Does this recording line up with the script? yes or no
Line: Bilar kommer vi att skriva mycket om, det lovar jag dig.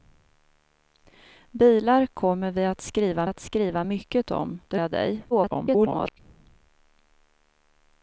no